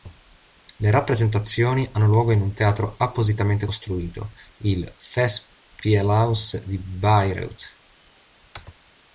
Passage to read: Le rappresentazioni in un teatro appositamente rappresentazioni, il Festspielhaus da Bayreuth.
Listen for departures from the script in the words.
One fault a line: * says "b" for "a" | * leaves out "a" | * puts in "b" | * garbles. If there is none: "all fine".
* puts in "hanno luogo"
* says "costruito" for "rappresentazioni"
* says "di" for "da"